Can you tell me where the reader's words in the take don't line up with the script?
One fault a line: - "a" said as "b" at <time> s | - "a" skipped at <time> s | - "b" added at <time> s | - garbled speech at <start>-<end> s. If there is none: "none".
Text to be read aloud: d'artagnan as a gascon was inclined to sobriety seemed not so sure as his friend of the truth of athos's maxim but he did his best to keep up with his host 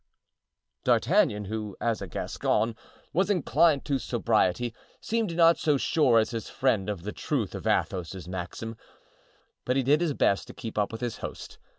- "who" added at 1.4 s